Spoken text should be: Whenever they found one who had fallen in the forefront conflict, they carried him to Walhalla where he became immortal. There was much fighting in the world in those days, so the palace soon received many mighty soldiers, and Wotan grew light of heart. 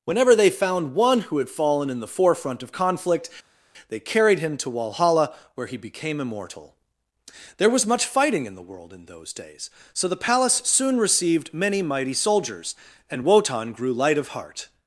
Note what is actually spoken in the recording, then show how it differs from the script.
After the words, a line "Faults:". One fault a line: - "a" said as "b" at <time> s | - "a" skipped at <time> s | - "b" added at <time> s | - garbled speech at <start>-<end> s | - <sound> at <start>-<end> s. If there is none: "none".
Whenever they found one who had fallen in the forefront of conflict, they carried him to Walhalla where he became immortal. There was much fighting in the world in those days, so the palace soon received many mighty soldiers, and Wotan grew light of heart.
Faults:
- "of" added at 2.6 s